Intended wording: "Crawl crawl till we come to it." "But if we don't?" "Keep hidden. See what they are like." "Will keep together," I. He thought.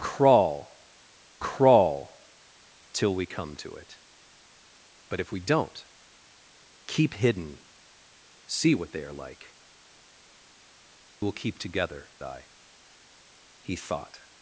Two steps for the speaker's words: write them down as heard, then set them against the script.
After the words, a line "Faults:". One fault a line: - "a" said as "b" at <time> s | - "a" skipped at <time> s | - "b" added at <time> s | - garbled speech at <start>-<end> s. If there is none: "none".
"Crawl crawl till we come to it." "But if we don't?" "Keep hidden. See what they are like." "Will keep together," I. He thought.
Faults:
none